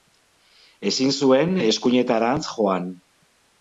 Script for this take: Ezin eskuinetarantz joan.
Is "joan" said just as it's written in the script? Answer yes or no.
yes